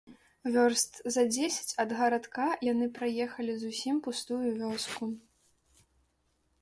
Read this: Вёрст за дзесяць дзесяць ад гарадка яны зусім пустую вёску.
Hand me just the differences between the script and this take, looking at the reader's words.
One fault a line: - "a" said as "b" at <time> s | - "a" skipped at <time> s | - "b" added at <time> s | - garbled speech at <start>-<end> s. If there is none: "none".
- "дзесяць" skipped at 1.8 s
- "праехалі" added at 3.0 s